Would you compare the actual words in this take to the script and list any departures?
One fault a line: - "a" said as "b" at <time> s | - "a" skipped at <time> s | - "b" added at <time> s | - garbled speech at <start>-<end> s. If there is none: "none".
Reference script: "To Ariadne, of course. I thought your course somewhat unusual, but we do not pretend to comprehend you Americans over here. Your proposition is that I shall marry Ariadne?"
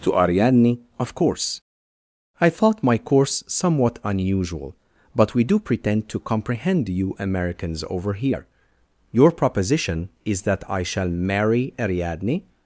- "your" said as "my" at 2.8 s
- "not" skipped at 5.6 s